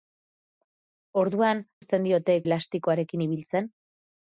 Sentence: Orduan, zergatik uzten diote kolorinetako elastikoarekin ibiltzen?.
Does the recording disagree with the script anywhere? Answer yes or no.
yes